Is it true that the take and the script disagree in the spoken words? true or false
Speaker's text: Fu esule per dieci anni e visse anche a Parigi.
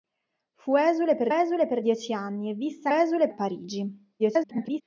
true